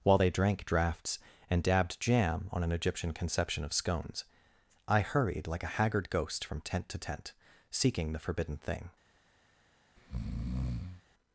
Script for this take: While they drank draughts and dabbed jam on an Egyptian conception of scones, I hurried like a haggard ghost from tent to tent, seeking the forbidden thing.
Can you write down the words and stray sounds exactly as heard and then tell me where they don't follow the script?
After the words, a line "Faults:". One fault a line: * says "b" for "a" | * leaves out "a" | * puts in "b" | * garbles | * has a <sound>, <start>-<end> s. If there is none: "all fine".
While they drank draughts and dabbed jam on an Egyptian conception of scones, I hurried like a haggard ghost from tent to tent, seeking the forbidden thing.
Faults:
* has a breath, 10.0-11.0 s